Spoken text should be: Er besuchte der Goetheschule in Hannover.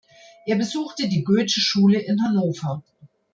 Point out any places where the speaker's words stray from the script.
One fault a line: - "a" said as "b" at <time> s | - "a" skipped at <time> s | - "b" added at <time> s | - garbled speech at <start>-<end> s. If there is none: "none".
- "der" said as "die" at 1.1 s